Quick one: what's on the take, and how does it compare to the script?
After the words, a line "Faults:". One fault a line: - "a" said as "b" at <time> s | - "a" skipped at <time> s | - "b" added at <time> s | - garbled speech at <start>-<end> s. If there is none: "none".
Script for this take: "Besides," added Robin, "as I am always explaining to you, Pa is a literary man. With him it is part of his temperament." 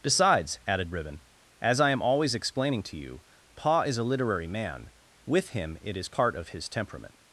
"Besides," added Ribbon, "as I am always explaining to you, Pa is a literary man. With him it is part of his temperament."
Faults:
- "Robin" said as "Ribbon" at 0.9 s